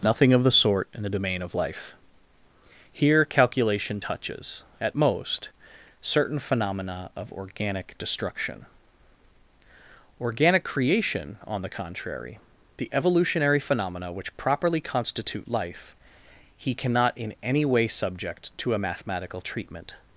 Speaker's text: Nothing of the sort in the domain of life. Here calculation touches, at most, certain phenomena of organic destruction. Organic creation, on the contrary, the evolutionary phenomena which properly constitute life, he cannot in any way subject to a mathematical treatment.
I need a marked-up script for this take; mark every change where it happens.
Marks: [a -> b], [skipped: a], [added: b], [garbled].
Nothing of the sort in the domain of life. Here calculation touches, at most, certain phenomena of organic destruction. Organic creation, on the contrary, the evolutionary phenomena which properly constitute life, he cannot in any way subject to a mathematical treatment.